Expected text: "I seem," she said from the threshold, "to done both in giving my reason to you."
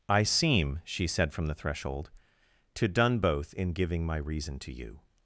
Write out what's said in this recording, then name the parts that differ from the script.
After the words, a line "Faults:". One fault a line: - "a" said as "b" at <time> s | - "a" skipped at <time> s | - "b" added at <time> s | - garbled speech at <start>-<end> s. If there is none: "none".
"I seem," she said from the threshold, "to done both in giving my reason to you."
Faults:
none